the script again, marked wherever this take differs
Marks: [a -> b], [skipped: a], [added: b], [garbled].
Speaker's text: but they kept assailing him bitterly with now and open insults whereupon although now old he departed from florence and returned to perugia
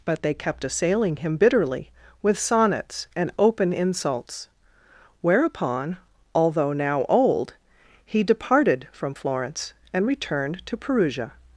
but they kept assailing him bitterly with [now -> sonnets] and open insults whereupon although now old he departed from florence and returned to perugia